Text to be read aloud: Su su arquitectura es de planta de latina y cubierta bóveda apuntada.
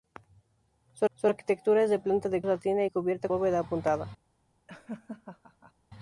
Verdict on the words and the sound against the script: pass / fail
fail